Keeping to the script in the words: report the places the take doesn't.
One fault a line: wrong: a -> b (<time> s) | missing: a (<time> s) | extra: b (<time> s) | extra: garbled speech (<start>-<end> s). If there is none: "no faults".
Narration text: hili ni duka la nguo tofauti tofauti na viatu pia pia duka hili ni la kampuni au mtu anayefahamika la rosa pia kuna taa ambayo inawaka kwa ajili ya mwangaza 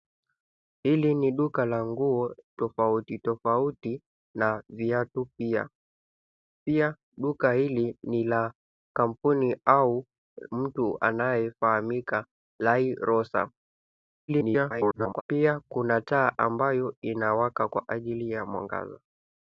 extra: garbled speech (14.3-15.2 s)